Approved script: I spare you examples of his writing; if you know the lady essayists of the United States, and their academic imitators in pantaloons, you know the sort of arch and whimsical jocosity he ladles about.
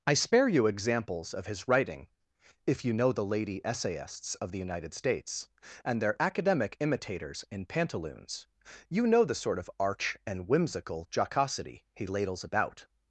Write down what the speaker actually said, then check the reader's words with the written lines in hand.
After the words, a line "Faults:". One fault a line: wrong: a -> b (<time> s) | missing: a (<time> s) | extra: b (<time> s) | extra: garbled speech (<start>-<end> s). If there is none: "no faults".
I spare you examples of his writing; if you know the lady essayists of the United States, and their academic imitators in pantaloons, you know the sort of arch and whimsical jocosity he ladles about.
Faults:
no faults